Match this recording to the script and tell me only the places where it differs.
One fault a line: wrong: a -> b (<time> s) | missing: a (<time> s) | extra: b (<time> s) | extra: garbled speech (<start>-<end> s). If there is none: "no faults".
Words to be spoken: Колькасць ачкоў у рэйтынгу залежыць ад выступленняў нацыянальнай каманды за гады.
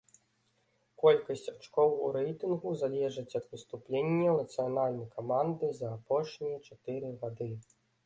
extra: апошнія чатыры (6.0 s)